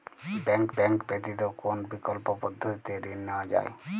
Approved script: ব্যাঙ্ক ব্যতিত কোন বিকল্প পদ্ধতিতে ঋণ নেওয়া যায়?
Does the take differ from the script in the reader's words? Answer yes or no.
yes